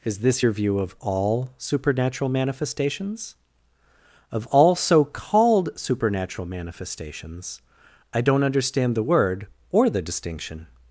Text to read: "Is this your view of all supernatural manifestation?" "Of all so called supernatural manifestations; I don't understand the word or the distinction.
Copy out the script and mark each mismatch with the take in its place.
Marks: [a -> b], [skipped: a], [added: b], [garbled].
"Is this your view of all supernatural [manifestation?" -> manifestations] "Of all so called supernatural manifestations; I don't understand the word or the distinction.